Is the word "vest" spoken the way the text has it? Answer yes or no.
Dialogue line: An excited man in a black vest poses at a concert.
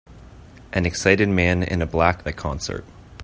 no